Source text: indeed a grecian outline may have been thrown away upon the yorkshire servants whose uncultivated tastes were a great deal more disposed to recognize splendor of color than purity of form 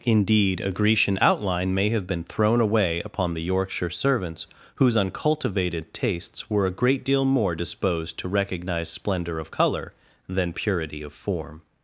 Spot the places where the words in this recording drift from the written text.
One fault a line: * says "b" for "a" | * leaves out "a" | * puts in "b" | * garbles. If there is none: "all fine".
all fine